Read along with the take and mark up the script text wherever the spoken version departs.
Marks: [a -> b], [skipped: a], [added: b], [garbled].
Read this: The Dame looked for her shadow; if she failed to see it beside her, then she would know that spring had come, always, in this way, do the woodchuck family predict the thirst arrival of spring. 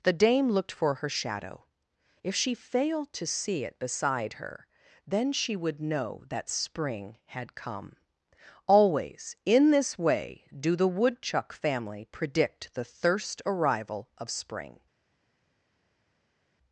The Dame looked for her shadow; if she failed to see it beside her, then she would know that spring had come, always, in this way, do the woodchuck family predict the thirst arrival of spring.